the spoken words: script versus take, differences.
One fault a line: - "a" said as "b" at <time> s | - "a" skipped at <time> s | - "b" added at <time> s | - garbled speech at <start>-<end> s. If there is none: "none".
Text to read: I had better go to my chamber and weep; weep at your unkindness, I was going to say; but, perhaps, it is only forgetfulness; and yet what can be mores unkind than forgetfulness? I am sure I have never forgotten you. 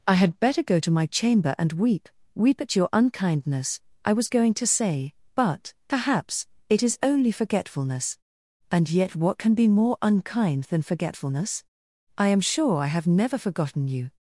- "mores" said as "more" at 9.7 s